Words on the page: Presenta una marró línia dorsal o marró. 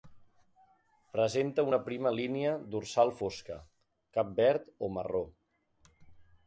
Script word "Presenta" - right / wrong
right